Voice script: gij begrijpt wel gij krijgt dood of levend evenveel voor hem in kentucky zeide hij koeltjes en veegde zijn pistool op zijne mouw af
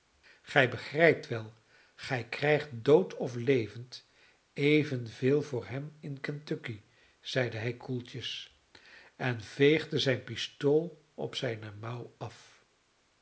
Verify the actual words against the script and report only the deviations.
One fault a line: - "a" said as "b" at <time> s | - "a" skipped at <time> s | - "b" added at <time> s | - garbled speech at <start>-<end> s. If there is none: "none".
none